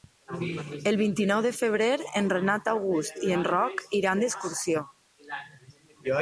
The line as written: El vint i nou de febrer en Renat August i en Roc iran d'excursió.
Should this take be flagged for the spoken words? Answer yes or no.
no